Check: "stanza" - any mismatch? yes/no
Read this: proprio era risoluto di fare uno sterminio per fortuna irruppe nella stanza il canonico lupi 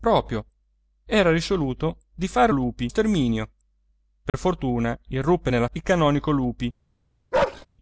yes